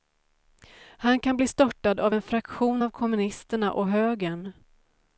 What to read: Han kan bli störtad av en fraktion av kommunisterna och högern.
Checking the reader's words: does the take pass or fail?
pass